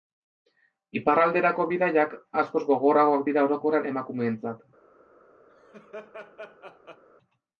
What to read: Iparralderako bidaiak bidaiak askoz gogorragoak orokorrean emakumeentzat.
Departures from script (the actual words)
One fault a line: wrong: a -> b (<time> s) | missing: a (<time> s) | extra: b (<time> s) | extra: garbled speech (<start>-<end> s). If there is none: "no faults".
missing: bidaiak (2.2 s)
extra: dira (3.3 s)